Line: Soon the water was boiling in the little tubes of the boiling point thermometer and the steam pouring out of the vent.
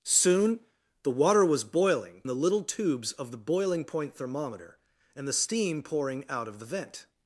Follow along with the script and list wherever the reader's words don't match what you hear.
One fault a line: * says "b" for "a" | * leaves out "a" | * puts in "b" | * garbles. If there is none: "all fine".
* leaves out "in"